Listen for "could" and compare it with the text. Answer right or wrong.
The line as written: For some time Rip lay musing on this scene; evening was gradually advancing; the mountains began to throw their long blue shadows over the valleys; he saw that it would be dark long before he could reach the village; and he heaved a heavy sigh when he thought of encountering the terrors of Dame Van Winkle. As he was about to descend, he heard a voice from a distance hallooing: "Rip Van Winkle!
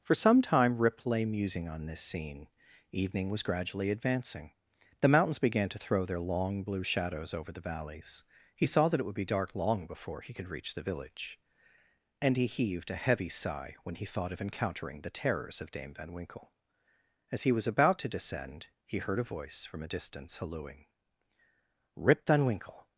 right